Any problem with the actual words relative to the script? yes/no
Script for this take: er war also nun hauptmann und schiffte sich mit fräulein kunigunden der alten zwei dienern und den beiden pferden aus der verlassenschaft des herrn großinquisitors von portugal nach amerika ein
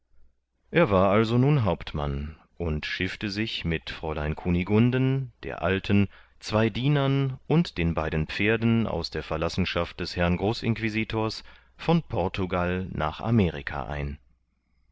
no